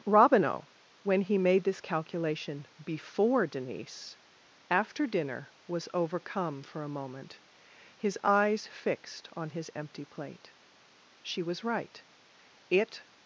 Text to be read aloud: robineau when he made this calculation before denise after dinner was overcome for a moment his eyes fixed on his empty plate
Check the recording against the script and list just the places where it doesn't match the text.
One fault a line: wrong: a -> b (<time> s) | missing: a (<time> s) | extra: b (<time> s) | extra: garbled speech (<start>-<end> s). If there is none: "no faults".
extra: she was right it (11.2 s)